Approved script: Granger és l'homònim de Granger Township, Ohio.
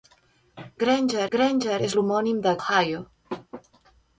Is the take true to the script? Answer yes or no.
no